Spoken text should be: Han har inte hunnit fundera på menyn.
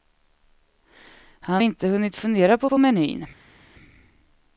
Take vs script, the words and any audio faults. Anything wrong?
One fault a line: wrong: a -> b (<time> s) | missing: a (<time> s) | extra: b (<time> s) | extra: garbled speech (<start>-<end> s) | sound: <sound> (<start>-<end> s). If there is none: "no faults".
missing: har (1.6 s)
extra: på (2.7 s)